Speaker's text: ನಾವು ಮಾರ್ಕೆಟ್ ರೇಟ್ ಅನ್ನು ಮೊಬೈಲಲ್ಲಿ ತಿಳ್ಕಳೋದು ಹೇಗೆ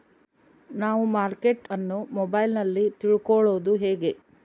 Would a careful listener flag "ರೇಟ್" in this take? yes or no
yes